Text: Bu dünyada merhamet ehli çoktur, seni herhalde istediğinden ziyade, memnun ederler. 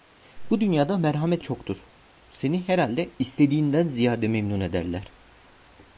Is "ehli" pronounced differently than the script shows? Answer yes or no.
yes